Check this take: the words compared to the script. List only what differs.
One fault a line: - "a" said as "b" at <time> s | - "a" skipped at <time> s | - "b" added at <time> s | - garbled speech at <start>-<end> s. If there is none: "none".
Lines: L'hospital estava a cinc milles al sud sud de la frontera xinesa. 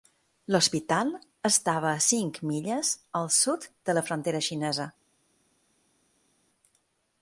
- "sud" skipped at 3.7 s